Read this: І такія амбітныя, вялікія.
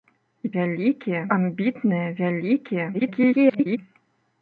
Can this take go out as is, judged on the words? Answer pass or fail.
fail